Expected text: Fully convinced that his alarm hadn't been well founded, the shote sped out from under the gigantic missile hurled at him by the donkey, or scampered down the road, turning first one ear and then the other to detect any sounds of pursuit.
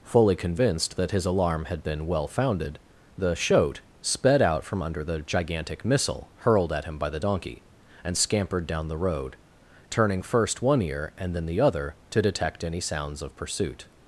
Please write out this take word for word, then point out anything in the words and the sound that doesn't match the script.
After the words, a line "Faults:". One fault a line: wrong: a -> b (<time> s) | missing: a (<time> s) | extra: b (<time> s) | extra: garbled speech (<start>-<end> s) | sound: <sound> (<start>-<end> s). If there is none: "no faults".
Fully convinced that his alarm had been well founded, the shote sped out from under the gigantic missile hurled at him by the donkey, and scampered down the road, turning first one ear and then the other to detect any sounds of pursuit.
Faults:
wrong: hadn't -> had (1.6 s)
wrong: or -> and (8.0 s)